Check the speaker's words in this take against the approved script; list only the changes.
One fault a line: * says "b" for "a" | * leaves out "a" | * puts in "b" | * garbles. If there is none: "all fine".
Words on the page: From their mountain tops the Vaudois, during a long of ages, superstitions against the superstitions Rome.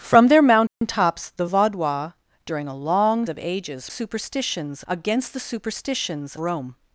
all fine